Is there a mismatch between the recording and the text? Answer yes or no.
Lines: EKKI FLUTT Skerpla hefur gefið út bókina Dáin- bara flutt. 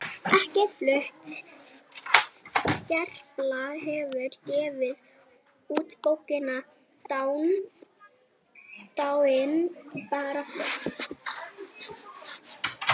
no